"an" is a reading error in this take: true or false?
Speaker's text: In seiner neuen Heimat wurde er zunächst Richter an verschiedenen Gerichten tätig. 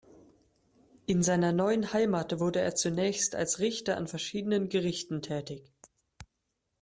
false